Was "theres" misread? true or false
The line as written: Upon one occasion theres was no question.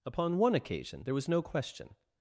true